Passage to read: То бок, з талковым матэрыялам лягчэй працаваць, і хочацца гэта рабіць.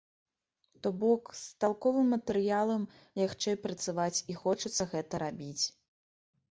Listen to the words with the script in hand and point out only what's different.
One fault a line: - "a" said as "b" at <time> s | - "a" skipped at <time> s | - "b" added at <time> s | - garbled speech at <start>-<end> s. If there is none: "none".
none